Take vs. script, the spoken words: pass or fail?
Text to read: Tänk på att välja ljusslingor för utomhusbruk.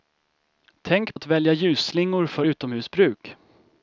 fail